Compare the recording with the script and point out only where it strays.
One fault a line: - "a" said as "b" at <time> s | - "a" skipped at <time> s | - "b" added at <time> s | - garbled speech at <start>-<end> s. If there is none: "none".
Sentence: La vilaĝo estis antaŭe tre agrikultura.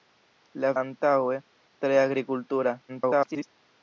- "vilaĝo estis" skipped at 0.7 s
- garbled speech at 2.9-3.5 s